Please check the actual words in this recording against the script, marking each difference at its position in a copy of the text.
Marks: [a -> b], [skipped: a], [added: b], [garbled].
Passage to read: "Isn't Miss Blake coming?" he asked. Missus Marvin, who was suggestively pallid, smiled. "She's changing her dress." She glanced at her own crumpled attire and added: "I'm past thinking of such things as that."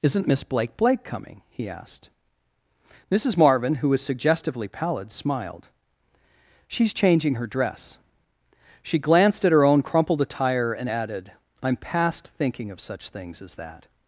"Isn't Miss Blake [added: Blake] coming?" he asked. Missus Marvin, who was suggestively pallid, smiled. "She's changing her dress." She glanced at her own crumpled attire and added: "I'm past thinking of such things as that."